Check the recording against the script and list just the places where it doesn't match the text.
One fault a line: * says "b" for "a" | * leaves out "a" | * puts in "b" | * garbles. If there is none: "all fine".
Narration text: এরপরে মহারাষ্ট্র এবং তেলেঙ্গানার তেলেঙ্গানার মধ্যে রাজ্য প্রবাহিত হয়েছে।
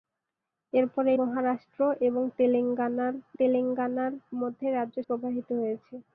all fine